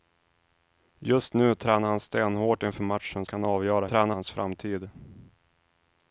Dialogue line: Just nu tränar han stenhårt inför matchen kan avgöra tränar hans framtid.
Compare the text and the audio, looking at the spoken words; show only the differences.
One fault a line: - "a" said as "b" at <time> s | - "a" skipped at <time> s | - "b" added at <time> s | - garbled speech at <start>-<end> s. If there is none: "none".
none